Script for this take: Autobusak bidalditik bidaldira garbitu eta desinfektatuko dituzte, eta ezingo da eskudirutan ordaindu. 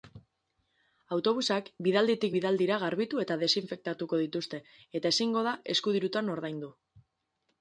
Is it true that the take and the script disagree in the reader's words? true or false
false